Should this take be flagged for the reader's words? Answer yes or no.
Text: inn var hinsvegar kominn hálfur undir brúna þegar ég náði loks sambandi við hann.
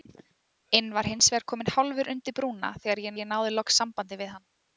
yes